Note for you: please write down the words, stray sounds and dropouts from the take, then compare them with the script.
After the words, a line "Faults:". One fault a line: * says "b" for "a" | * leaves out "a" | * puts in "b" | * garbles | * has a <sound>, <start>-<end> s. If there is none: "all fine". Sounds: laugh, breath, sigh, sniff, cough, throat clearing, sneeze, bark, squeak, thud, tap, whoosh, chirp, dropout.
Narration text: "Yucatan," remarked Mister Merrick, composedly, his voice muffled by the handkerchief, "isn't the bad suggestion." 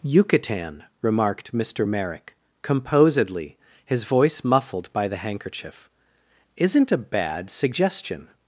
"Yucatan," remarked Mister Merrick, composedly, his voice muffled by the handkerchief, "isn't a bad suggestion."
Faults:
* says "a" for "the"